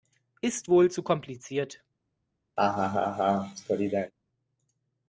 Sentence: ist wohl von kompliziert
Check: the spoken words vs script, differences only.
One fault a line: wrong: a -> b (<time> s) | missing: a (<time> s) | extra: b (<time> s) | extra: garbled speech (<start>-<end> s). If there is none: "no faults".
wrong: von -> zu (0.9 s)